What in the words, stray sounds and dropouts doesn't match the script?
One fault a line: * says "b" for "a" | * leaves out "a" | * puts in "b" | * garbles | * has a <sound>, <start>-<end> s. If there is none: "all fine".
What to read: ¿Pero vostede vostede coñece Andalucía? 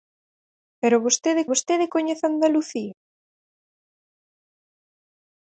all fine